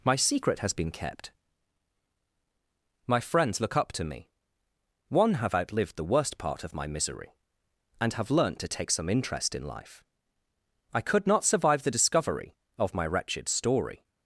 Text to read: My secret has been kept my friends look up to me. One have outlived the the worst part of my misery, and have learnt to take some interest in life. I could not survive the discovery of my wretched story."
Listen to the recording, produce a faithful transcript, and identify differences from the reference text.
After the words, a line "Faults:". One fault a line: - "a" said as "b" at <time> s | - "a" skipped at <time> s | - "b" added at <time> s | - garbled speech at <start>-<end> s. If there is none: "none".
My secret has been kept my friends look up to me. One have outlived the worst part of my misery, and have learnt to take some interest in life. I could not survive the discovery of my wretched story."
Faults:
- "the" skipped at 6.1 s